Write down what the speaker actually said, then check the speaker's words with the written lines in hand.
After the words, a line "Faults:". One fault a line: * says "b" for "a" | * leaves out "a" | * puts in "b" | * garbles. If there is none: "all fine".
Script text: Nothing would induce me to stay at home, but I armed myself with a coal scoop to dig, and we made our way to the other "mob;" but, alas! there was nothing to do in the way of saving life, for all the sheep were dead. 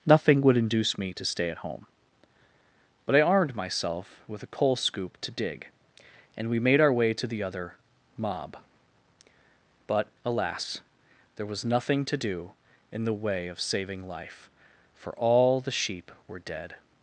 Nothing would induce me to stay at home, but I armed myself with a coal scoop to dig, and we made our way to the other "mob;" but, alas! there was nothing to do in the way of saving life, for all the sheep were dead.
Faults:
all fine